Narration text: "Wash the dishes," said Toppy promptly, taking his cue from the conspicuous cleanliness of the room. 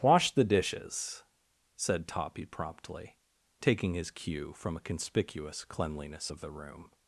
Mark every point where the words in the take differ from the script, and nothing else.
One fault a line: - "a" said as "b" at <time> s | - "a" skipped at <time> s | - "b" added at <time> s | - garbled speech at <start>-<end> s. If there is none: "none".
- "the" said as "a" at 4.8 s